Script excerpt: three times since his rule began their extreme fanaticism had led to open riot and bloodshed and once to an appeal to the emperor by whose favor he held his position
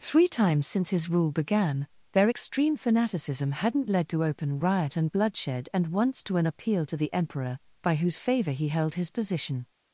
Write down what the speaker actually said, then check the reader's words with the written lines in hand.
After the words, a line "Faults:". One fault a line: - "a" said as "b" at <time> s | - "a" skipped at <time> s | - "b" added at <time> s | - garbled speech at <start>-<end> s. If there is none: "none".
three times since his rule began their extreme fanaticism hadn't led to open riot and bloodshed and once to an appeal to the emperor by whose favor he held his position
Faults:
- "had" said as "hadn't" at 3.5 s